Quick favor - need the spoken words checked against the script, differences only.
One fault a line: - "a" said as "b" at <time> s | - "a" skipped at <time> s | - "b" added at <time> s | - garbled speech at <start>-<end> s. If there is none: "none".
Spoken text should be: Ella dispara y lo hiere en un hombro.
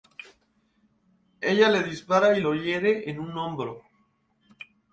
- "le" added at 1.7 s